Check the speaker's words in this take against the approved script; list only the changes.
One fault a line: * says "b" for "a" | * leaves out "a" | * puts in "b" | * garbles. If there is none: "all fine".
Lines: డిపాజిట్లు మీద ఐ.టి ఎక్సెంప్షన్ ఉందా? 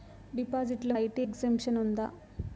* leaves out "మీద"